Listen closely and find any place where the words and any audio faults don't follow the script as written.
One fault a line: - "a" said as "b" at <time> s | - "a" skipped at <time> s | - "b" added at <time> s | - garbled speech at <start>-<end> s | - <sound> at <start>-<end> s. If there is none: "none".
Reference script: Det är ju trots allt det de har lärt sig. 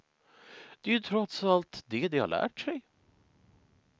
none